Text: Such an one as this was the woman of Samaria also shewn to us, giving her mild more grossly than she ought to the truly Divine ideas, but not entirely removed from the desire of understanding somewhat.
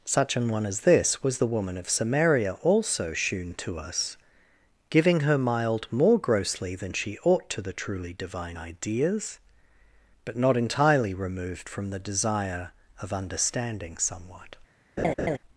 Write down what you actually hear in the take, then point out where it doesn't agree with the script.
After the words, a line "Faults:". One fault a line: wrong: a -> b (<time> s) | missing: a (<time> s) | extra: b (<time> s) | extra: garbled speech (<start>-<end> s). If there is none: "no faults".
Such an one as this was the woman of Samaria also shewn to us, giving her mild more grossly than she ought to the truly Divine ideas, but not entirely removed from the desire of understanding somewhat.
Faults:
no faults